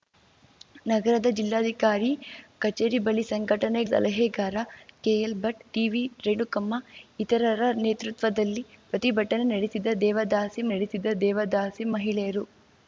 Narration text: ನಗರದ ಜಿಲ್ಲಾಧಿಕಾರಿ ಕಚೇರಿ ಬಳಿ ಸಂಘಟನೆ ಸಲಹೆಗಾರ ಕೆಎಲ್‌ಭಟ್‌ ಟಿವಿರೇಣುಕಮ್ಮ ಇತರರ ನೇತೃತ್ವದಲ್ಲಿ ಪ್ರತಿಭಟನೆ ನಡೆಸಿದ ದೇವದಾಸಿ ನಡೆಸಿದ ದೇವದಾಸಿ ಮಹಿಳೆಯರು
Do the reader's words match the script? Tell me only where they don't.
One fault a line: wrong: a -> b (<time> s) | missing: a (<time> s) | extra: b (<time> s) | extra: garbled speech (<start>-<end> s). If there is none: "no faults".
no faults